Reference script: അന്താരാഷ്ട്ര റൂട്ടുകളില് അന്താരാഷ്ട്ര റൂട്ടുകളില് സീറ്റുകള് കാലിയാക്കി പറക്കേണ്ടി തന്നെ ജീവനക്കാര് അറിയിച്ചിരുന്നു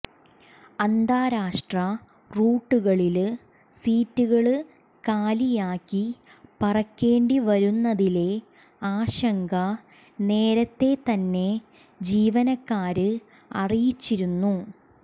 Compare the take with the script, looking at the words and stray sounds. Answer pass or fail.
fail